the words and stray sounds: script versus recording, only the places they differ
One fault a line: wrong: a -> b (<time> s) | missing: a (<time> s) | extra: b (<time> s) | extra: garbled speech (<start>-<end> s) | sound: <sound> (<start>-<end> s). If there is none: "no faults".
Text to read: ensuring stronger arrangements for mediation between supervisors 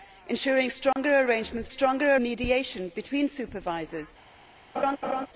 sound: dropout (0.9-1.0 s)
wrong: for -> stronger (1.7 s)
sound: laugh (4.7-5.3 s)